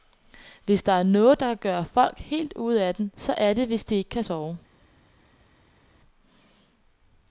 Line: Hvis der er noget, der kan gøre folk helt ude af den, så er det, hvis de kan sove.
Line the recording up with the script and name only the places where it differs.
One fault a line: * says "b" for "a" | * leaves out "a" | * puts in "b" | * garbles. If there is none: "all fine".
* puts in "ikke"